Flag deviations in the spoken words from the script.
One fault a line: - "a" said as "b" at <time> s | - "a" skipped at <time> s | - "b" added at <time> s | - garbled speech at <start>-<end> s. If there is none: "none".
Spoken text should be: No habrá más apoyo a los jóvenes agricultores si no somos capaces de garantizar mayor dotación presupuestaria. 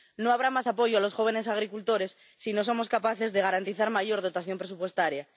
none